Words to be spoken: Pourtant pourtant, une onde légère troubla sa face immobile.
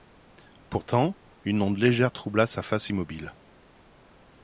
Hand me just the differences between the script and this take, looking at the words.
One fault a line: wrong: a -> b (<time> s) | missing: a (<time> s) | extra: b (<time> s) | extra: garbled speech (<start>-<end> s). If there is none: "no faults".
missing: pourtant (1.1 s)